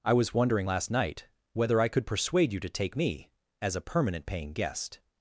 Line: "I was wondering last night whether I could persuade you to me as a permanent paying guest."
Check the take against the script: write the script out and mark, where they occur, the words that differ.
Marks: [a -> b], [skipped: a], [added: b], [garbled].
"I was wondering last night whether I could persuade you to [added: take] me as a permanent paying guest."